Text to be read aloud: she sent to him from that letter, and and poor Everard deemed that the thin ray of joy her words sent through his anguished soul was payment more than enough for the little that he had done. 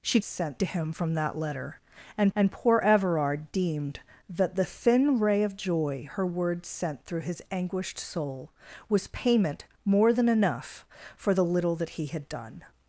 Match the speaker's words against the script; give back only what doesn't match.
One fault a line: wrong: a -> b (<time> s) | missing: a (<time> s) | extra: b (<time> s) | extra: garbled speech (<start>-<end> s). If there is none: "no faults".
no faults